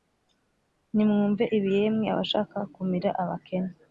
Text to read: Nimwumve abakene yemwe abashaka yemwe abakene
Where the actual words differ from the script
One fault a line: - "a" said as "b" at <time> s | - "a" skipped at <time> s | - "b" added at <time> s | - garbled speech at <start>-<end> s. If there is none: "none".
- "abakene" said as "ibi" at 1.6 s
- "yemwe" said as "kumira" at 2.7 s